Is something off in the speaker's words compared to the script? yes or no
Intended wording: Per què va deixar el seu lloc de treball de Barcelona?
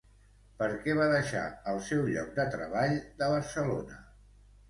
no